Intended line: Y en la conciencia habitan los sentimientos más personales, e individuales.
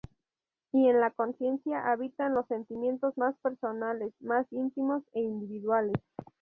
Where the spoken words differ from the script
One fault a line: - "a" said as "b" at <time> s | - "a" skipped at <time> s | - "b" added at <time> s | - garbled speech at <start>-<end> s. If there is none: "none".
- "más íntimos" added at 4.2 s